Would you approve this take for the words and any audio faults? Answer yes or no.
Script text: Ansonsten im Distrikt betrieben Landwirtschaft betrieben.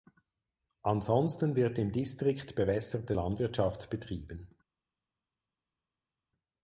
no